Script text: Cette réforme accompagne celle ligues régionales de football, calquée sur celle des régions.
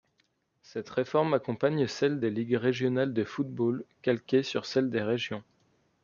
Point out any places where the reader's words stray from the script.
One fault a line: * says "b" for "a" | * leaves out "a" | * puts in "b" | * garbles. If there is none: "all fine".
* puts in "des"